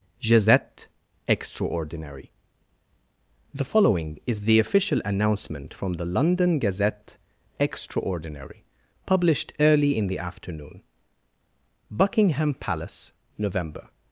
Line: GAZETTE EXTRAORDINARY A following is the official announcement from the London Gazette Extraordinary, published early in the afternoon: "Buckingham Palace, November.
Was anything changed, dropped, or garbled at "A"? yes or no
yes